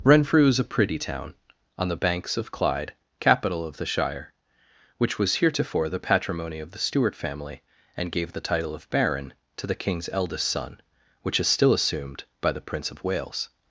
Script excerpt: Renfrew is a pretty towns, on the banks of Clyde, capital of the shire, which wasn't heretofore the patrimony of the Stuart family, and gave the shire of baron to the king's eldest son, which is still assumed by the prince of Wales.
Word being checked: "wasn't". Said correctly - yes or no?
no